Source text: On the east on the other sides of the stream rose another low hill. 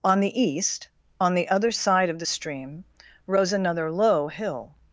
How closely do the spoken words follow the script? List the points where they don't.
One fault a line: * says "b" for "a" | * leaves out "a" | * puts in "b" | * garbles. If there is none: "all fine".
* says "side" for "sides"